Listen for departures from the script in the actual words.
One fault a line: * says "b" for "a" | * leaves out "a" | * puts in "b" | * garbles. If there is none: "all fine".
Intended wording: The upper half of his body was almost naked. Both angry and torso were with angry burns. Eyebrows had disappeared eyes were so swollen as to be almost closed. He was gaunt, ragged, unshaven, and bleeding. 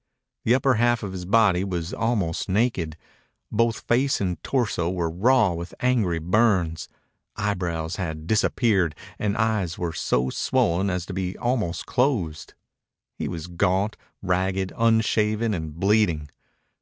* says "face" for "angry"
* puts in "raw"
* puts in "and"